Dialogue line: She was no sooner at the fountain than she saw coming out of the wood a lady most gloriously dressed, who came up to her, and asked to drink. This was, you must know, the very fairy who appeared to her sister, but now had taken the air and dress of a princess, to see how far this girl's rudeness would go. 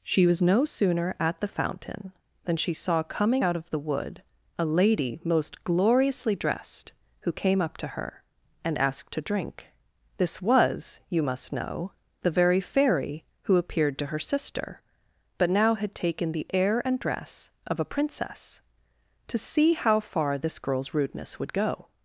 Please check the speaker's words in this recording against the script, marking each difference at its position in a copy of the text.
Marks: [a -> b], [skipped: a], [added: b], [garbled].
She was no sooner at the fountain than she saw coming out of the wood a lady most gloriously dressed, who came up to her, and asked to drink. This was, you must know, the very fairy who appeared to her sister, but now had taken the air and dress of a princess, to see how far this girl's rudeness would go.